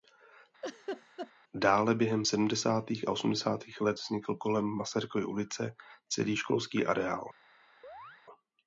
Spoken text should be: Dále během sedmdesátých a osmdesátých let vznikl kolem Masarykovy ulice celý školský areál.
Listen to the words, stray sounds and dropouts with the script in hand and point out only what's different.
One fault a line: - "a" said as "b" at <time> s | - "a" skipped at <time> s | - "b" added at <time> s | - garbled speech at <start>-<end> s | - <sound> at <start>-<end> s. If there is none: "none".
- laugh at 0.6-1.3 s
- chirp at 7.8-8.2 s